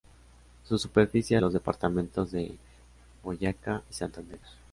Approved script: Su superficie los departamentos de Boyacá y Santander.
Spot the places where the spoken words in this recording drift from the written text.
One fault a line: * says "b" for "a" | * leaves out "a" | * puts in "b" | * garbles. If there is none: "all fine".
all fine